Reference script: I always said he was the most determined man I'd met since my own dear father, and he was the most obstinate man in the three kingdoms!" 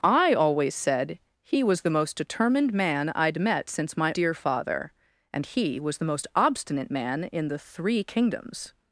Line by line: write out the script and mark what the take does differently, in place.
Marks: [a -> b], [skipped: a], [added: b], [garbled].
I always said he was the most determined man I'd met since my [skipped: own] dear father, and he was the most obstinate man in the three kingdoms!"